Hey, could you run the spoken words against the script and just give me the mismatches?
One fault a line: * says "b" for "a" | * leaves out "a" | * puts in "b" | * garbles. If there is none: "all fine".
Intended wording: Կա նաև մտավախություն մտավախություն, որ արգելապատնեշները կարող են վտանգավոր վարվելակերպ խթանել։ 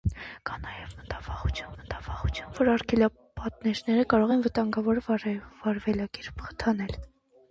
all fine